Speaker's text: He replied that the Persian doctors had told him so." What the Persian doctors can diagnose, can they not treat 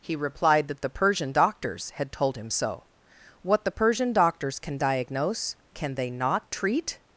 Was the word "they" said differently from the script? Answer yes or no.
no